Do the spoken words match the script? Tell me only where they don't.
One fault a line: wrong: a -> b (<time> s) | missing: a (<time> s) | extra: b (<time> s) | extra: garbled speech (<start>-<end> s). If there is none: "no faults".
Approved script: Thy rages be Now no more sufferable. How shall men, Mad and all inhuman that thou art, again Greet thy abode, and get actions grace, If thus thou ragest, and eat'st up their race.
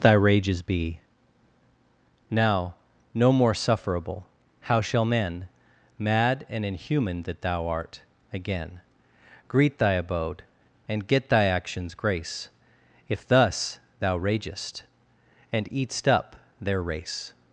missing: all (6.7 s)
extra: thy (11.3 s)